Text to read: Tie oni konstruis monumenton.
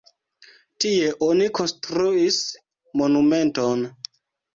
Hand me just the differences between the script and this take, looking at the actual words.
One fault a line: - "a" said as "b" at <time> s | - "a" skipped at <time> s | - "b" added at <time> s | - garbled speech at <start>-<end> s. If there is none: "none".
none